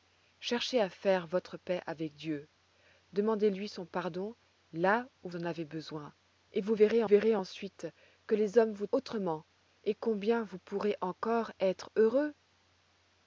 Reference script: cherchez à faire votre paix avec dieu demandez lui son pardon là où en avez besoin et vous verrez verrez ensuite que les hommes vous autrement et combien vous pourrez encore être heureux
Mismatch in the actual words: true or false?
false